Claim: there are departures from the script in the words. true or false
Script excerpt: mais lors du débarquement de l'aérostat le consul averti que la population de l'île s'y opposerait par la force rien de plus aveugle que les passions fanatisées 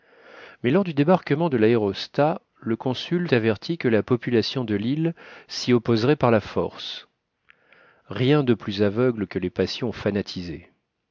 false